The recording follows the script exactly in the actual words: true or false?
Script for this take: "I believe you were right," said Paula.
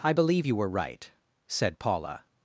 true